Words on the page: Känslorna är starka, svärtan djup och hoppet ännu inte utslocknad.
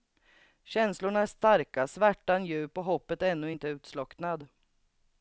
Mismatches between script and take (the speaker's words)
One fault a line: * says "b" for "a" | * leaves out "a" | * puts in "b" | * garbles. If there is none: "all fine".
all fine